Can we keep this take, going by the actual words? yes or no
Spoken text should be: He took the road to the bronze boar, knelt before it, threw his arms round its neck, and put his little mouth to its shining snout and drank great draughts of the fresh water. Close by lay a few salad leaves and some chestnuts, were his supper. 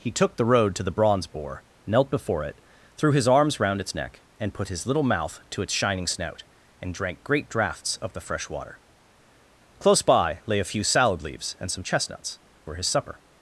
yes